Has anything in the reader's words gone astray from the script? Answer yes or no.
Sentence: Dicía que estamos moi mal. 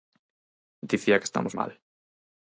yes